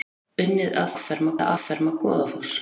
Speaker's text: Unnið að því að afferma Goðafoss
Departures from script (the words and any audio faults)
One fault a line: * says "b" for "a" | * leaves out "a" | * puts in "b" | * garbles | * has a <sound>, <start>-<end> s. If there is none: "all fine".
* says "afferma" for "því"